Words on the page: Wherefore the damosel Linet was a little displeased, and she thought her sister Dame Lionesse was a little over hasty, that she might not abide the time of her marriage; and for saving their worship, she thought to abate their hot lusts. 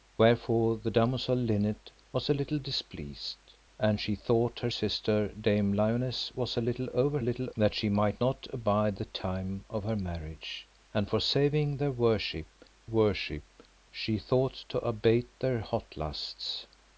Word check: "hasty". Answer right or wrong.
wrong